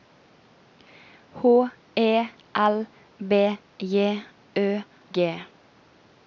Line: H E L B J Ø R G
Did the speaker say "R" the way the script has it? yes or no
no